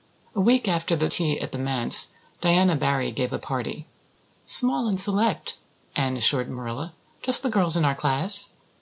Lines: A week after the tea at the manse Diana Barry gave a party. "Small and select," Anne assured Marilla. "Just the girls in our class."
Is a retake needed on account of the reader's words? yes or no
no